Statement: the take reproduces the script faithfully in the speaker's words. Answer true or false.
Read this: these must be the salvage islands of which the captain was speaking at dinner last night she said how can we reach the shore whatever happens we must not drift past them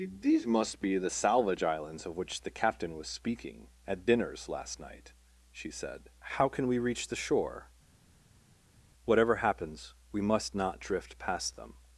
false